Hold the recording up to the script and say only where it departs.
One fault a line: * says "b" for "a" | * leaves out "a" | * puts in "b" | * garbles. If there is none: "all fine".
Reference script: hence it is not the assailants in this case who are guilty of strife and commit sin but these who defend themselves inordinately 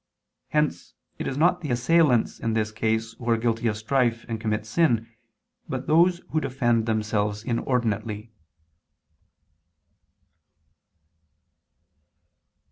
* says "those" for "these"